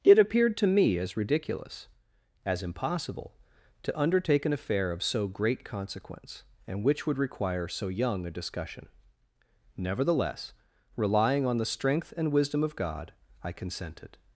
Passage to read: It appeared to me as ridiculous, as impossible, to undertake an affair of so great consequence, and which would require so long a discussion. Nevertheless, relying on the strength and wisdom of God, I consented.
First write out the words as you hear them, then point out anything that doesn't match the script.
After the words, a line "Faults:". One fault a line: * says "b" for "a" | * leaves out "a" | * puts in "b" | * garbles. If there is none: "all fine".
It appeared to me as ridiculous, as impossible, to undertake an affair of so great consequence, and which would require so young a discussion. Nevertheless, relying on the strength and wisdom of God, I consented.
Faults:
* says "young" for "long"